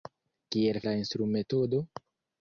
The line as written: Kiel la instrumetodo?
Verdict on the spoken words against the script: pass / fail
pass